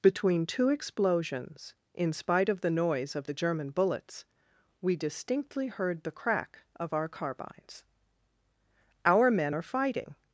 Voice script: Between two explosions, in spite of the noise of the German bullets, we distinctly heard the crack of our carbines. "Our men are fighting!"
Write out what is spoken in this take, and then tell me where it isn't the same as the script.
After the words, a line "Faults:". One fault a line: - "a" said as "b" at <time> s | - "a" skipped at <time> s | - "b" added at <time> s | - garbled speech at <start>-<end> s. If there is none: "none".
Between two explosions, in spite of the noise of the German bullets, we distinctly heard the crack of our carbines. "Our men are fighting!"
Faults:
none